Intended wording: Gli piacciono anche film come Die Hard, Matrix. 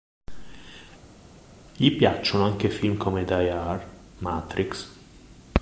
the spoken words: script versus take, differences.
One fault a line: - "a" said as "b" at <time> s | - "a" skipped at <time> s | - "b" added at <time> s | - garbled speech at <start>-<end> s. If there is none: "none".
none